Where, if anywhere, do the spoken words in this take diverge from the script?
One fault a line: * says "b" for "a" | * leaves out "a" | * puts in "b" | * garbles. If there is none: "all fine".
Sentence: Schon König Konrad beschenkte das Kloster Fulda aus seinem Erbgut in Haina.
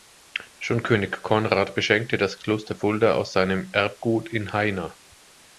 all fine